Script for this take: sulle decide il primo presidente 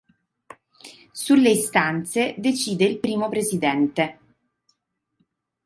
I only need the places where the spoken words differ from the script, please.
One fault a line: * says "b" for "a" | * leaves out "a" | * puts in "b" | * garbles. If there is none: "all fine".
* puts in "istanze"